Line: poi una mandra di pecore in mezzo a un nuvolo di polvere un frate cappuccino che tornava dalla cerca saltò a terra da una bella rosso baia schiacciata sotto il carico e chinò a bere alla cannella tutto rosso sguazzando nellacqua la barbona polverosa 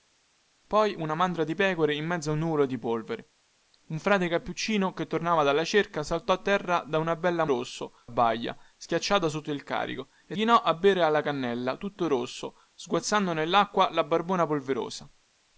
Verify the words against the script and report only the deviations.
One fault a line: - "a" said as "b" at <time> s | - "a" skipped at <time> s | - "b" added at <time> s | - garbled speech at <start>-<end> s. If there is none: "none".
none